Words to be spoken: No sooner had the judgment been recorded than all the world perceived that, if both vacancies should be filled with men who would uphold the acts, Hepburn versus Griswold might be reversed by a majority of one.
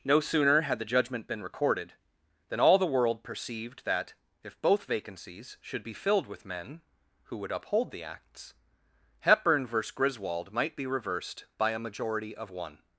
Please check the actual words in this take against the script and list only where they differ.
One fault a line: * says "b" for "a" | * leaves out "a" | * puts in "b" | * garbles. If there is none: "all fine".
all fine